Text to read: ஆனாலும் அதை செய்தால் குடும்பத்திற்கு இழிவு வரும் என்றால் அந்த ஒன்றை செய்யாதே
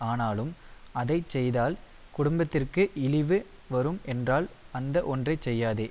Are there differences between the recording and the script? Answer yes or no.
no